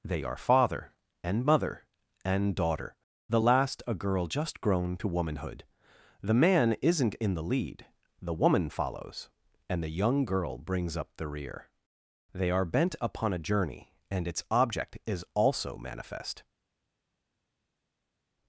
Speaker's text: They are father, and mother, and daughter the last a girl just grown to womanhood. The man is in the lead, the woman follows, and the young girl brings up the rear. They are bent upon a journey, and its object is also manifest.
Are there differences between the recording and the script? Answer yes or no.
yes